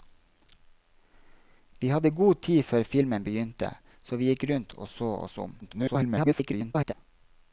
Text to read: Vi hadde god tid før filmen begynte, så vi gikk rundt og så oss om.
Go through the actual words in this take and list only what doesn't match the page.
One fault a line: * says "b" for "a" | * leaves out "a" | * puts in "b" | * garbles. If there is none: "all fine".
* garbles